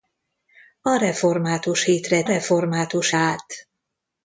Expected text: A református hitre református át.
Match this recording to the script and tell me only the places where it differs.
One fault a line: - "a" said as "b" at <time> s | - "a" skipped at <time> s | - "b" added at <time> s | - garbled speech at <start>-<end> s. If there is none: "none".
none